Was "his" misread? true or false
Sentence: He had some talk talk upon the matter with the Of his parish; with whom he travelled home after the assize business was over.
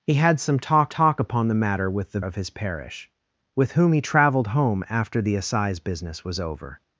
false